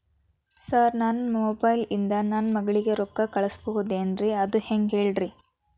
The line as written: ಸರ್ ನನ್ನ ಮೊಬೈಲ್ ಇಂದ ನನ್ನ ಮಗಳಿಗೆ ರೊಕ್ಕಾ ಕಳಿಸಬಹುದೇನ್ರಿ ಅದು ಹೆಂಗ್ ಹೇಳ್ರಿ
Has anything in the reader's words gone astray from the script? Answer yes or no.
no